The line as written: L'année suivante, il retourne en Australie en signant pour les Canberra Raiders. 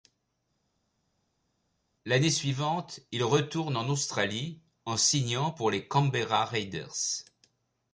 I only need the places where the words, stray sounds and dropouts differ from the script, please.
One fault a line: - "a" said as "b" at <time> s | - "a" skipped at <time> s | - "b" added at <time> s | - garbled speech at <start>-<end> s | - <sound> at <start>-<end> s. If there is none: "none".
none